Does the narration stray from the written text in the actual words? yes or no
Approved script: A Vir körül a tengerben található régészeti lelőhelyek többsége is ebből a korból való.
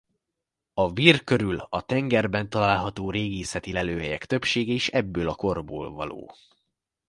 no